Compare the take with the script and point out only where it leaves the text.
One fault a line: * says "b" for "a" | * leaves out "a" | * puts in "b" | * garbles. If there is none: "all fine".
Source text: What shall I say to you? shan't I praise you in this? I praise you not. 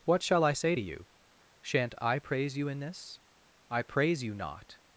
all fine